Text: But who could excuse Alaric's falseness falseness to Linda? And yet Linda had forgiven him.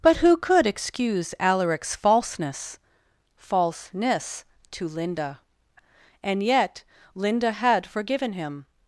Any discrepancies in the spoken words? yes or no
no